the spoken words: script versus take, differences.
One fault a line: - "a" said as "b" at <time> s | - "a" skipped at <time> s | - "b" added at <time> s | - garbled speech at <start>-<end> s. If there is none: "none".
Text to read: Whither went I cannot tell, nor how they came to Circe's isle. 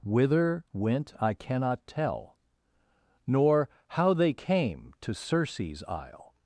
none